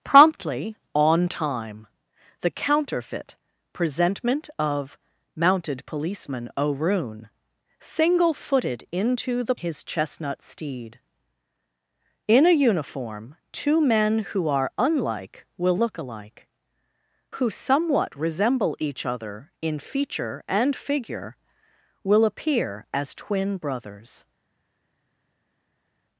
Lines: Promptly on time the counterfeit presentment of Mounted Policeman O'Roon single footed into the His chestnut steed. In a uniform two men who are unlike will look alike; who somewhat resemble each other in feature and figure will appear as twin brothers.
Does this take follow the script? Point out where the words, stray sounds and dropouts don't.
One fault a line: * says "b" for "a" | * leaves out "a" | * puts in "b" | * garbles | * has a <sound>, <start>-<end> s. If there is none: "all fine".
all fine